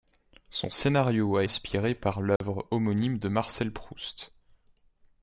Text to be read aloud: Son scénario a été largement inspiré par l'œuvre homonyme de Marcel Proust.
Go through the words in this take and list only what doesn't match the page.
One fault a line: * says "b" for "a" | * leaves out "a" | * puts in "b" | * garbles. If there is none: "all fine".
* leaves out "été largement"